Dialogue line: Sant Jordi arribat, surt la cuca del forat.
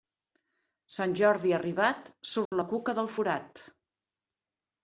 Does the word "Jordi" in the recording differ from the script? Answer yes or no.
no